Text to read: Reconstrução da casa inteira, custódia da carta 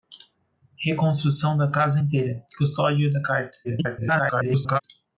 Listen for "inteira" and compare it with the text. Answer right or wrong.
right